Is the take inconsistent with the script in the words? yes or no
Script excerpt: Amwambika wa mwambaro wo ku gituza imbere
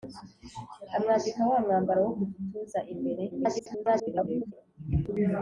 yes